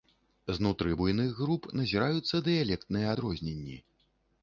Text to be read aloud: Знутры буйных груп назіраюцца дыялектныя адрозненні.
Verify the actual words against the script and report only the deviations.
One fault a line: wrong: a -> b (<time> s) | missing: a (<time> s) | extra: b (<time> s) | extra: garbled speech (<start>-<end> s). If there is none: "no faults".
no faults